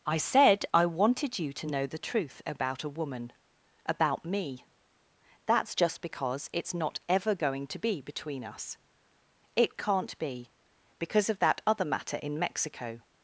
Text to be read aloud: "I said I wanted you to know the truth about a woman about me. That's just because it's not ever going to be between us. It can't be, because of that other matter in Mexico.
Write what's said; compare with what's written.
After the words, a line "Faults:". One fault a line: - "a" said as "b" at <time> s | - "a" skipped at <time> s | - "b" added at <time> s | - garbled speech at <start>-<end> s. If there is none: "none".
"I said I wanted you to know the truth about a woman about me. That's just because it's not ever going to be between us. It can't be, because of that other matter in Mexico.
Faults:
none